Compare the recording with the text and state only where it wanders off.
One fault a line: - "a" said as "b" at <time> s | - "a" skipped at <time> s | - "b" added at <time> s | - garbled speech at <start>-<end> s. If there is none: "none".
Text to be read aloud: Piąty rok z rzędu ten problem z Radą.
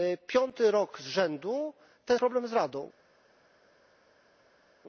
none